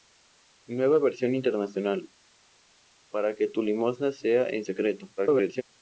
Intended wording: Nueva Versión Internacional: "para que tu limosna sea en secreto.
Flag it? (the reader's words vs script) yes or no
yes